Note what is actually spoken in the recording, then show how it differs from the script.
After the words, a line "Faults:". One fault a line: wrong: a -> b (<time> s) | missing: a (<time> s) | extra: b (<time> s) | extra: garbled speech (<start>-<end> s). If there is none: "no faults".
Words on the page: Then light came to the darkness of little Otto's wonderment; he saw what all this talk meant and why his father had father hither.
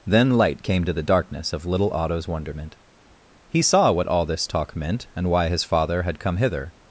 Then light came to the darkness of little Otto's wonderment; he saw what all this talk meant and why his father had come hither.
Faults:
wrong: father -> come (6.2 s)